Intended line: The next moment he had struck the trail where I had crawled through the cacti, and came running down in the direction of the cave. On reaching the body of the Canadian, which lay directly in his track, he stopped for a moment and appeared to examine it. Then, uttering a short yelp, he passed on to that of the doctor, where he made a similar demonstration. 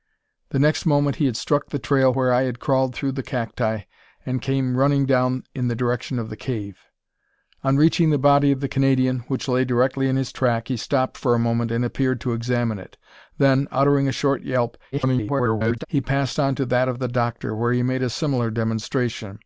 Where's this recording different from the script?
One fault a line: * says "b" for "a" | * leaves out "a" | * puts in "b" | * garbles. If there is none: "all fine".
* garbles